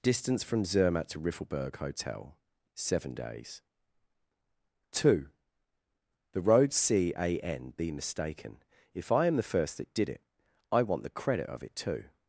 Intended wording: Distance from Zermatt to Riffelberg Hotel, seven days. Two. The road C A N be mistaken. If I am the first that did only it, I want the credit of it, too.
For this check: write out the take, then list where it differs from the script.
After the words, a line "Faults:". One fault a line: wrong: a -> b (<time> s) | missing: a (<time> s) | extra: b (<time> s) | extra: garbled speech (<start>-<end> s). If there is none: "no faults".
Distance from Zermatt to Riffelberg Hotel, seven days. Two. The road C A N be mistaken. If I am the first that did it, I want the credit of it, too.
Faults:
missing: only (10.1 s)